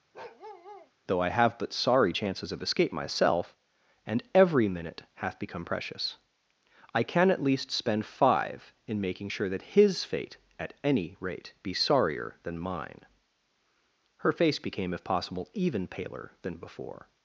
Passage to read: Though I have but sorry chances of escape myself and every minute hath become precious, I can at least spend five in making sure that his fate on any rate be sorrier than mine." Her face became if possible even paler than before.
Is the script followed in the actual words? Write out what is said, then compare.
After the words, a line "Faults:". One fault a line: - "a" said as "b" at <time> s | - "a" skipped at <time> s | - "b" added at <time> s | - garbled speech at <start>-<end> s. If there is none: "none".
Though I have but sorry chances of escape myself and every minute hath become precious, I can at least spend five in making sure that his fate at any rate be sorrier than mine." Her face became if possible even paler than before.
Faults:
- "on" said as "at" at 10.6 s